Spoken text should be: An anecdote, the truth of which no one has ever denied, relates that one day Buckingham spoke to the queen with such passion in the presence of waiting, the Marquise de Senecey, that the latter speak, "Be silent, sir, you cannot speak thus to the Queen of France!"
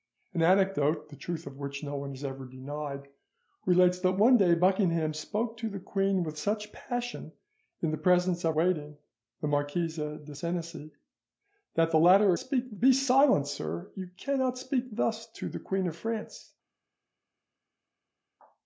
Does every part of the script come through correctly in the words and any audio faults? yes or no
yes